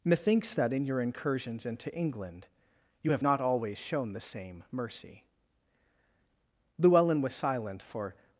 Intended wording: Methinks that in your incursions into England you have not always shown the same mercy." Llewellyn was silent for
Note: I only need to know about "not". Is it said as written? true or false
true